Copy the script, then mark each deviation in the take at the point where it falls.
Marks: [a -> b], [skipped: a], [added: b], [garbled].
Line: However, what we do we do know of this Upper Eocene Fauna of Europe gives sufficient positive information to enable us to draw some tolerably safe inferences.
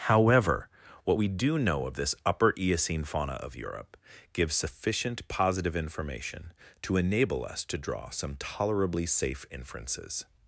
However, what we do [skipped: we do] know of this Upper Eocene Fauna of Europe gives sufficient positive information to enable us to draw some tolerably safe inferences.